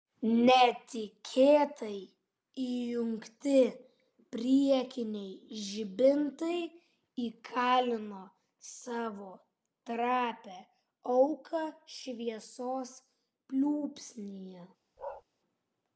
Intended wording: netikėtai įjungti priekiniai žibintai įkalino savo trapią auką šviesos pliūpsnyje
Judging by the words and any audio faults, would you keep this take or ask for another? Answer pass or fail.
fail